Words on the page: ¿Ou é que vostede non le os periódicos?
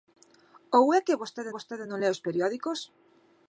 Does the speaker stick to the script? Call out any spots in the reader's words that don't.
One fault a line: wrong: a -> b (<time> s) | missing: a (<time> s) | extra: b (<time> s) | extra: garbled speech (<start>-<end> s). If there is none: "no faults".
extra: vostede (1.5 s)